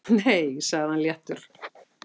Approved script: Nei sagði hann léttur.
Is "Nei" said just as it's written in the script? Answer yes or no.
yes